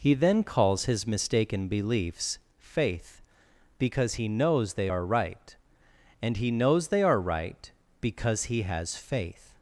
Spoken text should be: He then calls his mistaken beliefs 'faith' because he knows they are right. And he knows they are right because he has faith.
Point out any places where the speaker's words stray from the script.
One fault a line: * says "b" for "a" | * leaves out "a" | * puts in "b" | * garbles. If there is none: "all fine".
all fine